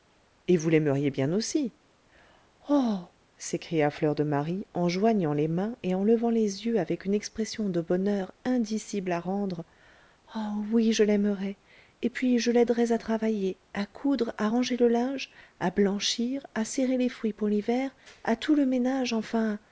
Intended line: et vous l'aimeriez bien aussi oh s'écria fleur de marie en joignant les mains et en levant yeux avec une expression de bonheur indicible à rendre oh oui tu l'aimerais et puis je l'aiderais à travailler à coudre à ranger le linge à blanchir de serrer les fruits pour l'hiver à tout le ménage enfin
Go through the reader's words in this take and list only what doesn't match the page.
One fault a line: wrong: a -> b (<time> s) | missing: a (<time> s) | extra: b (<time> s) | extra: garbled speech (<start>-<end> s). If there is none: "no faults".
extra: les (6.3 s)
wrong: tu -> je (10.9 s)
wrong: de -> à (16.5 s)